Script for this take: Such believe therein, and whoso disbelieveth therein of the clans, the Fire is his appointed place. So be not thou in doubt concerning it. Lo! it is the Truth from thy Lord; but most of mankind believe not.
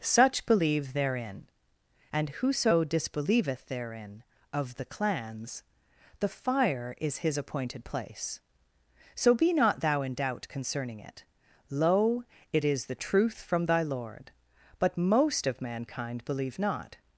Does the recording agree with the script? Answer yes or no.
yes